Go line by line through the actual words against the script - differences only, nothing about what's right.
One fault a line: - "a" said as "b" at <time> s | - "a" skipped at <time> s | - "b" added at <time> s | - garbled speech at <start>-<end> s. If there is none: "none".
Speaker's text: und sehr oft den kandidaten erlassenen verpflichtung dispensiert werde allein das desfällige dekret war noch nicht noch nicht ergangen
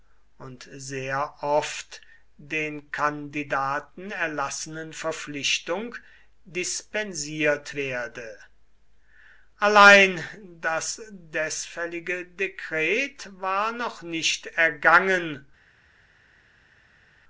- "noch nicht" skipped at 14.4 s